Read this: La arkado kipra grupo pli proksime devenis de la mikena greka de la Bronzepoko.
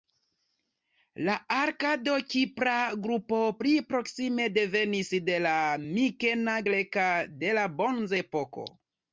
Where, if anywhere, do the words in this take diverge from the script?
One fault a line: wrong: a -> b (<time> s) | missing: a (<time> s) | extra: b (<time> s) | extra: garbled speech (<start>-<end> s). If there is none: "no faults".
no faults